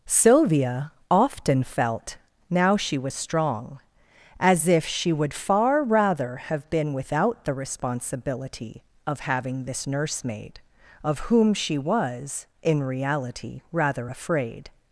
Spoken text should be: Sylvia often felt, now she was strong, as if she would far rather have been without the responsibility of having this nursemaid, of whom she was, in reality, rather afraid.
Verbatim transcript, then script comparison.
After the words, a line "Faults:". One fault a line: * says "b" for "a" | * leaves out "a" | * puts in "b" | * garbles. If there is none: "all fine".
Sylvia often felt, now she was strong, as if she would far rather have been without the responsibility of having this nursemaid, of whom she was, in reality, rather afraid.
Faults:
all fine